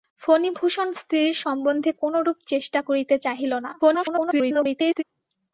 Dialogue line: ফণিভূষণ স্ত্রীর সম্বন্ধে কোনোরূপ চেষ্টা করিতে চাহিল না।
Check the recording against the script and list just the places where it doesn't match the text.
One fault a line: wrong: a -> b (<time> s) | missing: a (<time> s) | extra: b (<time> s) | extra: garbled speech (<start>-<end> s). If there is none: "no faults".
extra: garbled speech (3.8-5.0 s)